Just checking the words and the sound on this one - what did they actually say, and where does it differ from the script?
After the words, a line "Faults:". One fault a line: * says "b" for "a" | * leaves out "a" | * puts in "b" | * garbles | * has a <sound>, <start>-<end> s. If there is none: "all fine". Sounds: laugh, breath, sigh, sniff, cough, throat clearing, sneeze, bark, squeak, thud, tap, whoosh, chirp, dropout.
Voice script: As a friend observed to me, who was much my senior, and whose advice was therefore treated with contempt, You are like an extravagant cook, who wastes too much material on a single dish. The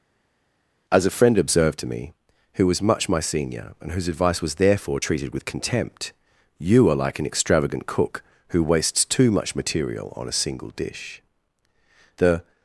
As a friend observed to me, who was much my senior, and whose advice was therefore treated with contempt, You are like an extravagant cook, who wastes too much material on a single dish. The
Faults:
all fine